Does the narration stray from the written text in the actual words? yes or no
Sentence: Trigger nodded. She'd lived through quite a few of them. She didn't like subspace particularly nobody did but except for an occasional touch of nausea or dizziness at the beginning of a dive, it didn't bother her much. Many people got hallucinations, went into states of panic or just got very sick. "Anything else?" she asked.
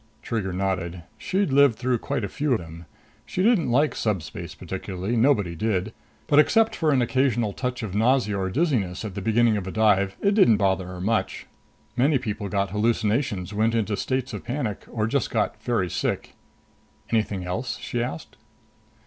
yes